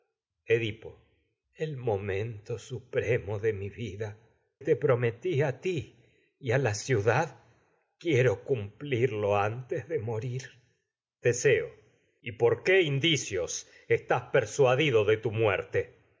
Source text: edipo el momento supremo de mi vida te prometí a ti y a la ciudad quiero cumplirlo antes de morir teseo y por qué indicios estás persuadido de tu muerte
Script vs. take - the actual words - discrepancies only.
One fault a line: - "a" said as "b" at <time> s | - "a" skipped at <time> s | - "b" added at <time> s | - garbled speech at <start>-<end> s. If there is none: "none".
none